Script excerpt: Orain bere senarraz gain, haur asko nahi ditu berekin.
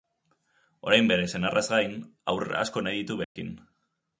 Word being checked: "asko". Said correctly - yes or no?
yes